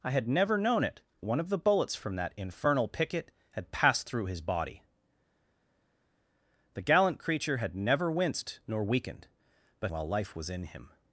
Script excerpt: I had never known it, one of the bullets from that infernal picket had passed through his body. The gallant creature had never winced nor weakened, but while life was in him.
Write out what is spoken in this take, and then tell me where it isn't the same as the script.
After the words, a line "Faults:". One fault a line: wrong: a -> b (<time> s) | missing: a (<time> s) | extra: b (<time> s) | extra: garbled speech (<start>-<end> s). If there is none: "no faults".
I had never known it, one of the bullets from that infernal picket had passed through his body. The gallant creature had never winced nor weakened, but while life was in him.
Faults:
no faults